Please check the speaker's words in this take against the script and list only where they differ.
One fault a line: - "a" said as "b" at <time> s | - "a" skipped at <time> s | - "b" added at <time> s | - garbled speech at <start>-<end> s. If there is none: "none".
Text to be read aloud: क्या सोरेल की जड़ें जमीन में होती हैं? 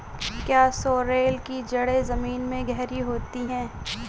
- "गहरी" added at 2.7 s